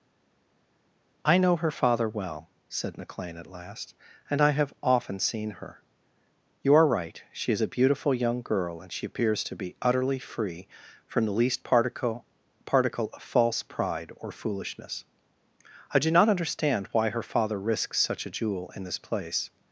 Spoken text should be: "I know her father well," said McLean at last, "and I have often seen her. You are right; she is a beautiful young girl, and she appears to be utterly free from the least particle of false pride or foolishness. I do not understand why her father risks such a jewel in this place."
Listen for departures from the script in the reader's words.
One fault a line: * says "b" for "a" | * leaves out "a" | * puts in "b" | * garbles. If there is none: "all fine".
* puts in "particle"